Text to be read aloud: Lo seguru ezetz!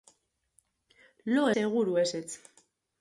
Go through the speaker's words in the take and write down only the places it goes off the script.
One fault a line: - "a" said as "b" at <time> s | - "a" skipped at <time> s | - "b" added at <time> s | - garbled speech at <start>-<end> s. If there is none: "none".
none